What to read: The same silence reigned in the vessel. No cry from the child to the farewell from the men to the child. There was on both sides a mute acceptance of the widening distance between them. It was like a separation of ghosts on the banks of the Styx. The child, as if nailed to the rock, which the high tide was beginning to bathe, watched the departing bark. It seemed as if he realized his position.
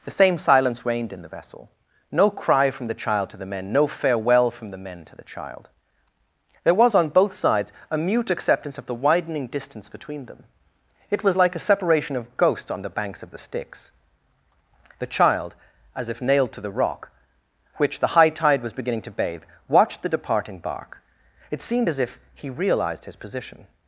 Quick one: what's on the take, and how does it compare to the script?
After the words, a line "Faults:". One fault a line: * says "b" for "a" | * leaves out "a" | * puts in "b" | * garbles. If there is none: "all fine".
The same silence reigned in the vessel. No cry from the child to the men no farewell from the men to the child. There was on both sides a mute acceptance of the widening distance between them. It was like a separation of ghosts on the banks of the Styx. The child, as if nailed to the rock, which the high tide was beginning to bathe, watched the departing bark. It seemed as if he realized his position.
Faults:
* puts in "men no"